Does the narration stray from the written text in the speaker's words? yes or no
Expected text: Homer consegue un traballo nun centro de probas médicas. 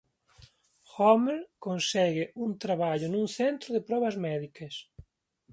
no